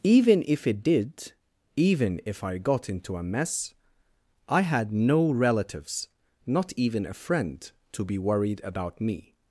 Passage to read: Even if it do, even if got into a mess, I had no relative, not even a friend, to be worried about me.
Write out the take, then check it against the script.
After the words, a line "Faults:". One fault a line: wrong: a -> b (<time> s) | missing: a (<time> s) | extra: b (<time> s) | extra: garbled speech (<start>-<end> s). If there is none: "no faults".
Even if it did, even if I got into a mess, I had no relatives, not even a friend, to be worried about me.
Faults:
wrong: do -> did (0.8 s)
extra: I (2.4 s)
wrong: relative -> relatives (5.3 s)